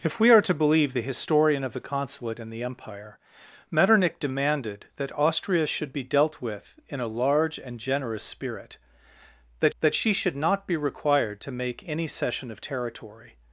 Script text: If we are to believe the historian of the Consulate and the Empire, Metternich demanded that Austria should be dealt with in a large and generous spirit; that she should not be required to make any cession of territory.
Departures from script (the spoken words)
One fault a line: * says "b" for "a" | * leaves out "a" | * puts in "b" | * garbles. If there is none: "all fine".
* puts in "that"